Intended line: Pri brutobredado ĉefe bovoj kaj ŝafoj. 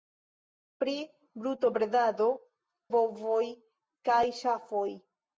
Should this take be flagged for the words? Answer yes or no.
yes